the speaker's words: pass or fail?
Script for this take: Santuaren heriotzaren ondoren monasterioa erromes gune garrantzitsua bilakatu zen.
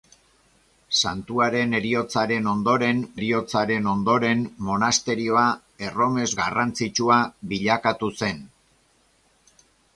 fail